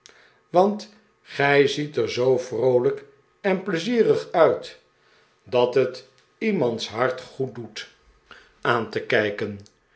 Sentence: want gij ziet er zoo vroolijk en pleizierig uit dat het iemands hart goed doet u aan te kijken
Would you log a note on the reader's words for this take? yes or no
yes